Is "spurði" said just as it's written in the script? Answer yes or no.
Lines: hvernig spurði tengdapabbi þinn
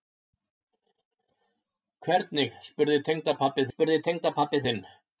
yes